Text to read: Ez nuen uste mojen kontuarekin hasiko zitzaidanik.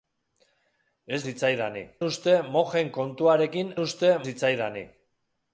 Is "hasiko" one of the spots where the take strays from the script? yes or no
yes